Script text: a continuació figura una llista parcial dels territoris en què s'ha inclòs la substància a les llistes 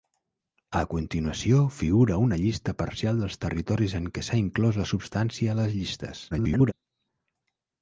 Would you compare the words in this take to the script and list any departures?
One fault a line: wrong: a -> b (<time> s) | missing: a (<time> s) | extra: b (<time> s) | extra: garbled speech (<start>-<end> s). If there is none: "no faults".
extra: garbled speech (6.3-6.7 s)